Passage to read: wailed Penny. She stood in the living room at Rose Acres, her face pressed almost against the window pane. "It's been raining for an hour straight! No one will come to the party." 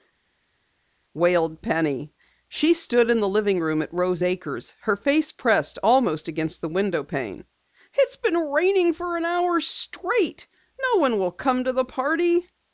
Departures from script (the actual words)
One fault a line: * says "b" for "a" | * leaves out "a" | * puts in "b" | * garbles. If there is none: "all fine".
all fine